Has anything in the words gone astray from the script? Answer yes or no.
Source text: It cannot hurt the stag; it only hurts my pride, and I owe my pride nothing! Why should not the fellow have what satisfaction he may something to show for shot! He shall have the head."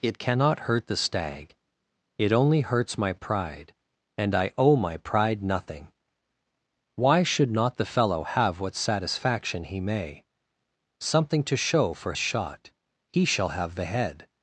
no